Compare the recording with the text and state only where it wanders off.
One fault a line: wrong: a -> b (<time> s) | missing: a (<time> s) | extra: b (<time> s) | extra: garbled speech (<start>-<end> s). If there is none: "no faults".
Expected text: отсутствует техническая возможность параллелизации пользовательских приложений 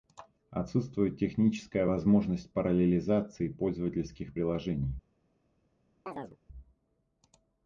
no faults